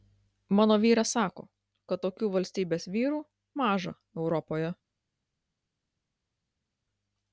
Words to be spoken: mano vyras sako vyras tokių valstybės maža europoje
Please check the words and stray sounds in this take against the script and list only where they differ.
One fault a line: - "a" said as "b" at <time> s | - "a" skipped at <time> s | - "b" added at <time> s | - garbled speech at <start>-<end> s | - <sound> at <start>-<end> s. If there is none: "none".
- "vyras" said as "kad" at 1.9 s
- "vyrų" added at 3.0 s